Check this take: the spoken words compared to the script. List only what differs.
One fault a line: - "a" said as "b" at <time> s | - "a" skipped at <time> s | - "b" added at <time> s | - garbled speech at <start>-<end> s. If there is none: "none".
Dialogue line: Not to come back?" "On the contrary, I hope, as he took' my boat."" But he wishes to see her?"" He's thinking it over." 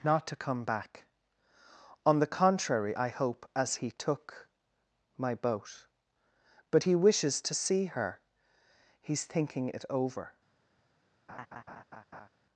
none